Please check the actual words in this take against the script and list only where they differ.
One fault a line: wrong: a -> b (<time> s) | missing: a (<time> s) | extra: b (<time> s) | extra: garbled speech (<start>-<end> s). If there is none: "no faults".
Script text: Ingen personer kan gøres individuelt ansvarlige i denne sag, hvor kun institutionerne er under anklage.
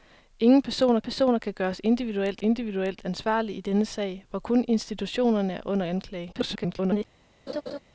extra: personer (1.0 s)
extra: individuelt (2.4 s)
extra: garbled speech (6.3-7.1 s)